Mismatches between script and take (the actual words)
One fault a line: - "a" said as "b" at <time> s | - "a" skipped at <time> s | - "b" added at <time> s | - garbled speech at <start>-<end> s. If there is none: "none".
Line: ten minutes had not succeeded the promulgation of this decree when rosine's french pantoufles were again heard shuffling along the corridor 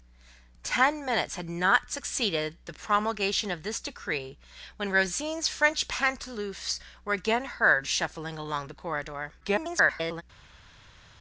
- garbled speech at 9.4-10.2 s